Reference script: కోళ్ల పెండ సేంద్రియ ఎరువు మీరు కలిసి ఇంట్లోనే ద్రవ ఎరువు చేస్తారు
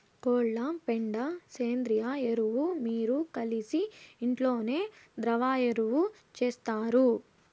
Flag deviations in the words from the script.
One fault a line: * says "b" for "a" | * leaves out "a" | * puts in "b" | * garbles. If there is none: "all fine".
all fine